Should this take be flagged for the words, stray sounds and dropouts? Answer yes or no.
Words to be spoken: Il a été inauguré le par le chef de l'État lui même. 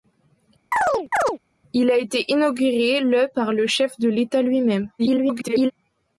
yes